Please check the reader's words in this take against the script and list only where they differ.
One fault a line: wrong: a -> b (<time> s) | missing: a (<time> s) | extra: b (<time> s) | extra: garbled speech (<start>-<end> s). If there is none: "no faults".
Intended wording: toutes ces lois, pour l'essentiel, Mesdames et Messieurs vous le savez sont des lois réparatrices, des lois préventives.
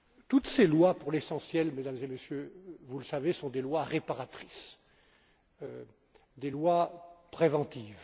no faults